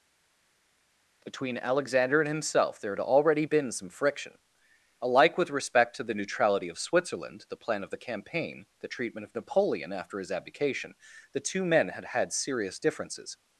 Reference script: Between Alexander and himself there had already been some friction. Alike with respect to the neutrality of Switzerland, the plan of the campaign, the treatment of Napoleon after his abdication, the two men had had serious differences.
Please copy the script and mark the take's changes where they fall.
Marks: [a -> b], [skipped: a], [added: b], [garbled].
Between Alexander and himself there had already been some friction. Alike with respect to the neutrality of Switzerland, the plan of the campaign, the treatment of Napoleon after his abdication, the two men had had serious differences.